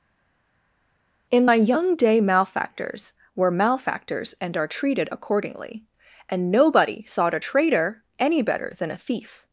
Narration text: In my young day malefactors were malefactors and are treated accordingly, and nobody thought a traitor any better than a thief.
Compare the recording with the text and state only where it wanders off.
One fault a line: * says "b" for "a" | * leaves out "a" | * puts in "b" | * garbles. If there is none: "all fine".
all fine